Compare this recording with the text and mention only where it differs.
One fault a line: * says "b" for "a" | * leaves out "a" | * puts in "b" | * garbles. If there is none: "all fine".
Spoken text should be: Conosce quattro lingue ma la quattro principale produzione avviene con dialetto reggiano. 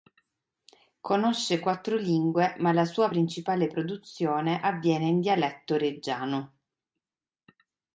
* says "sua" for "quattro"
* says "in" for "con"